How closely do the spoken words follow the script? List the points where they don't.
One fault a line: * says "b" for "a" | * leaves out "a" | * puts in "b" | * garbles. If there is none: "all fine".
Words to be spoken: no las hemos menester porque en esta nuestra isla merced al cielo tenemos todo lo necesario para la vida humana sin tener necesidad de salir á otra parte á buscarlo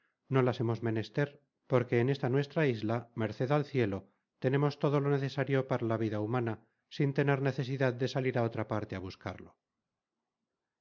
all fine